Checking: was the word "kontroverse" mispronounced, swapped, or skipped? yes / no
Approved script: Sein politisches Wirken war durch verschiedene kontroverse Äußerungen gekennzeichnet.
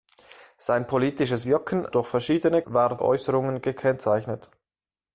yes